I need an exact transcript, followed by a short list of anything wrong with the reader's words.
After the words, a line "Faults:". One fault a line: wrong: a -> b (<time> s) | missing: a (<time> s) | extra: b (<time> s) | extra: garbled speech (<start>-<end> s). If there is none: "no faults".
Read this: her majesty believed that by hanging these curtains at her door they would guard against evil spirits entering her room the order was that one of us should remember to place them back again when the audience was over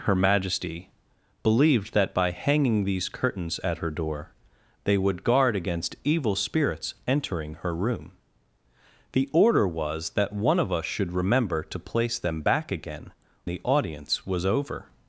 her majesty believed that by hanging these curtains at her door they would guard against evil spirits entering her room the order was that one of us should remember to place them back again the audience was over
Faults:
missing: when (13.1 s)